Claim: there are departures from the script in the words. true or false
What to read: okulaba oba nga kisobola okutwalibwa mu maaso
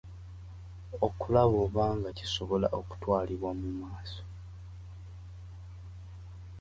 false